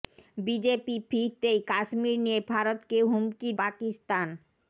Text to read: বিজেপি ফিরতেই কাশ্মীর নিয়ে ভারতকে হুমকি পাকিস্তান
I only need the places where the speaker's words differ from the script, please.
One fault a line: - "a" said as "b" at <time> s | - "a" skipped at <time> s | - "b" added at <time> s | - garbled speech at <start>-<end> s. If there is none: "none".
none